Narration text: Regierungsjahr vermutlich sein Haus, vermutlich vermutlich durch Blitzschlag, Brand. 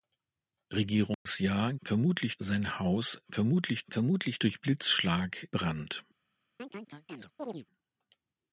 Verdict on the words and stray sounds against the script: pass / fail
fail